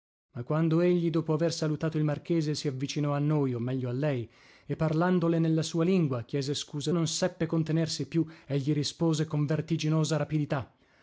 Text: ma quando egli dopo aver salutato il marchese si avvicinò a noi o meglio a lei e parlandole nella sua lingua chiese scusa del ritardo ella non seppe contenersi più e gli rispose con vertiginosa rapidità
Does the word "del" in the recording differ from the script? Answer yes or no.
yes